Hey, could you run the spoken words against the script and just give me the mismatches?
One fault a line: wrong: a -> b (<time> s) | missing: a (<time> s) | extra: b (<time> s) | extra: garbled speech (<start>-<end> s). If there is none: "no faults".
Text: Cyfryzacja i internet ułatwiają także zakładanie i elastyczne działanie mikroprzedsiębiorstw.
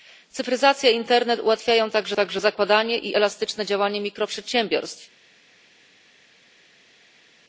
extra: także (2.1 s)